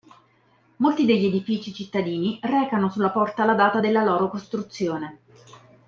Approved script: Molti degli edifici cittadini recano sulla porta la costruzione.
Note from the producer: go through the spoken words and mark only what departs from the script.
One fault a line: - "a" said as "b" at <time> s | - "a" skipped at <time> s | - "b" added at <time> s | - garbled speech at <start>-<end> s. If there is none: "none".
- "data della loro" added at 3.5 s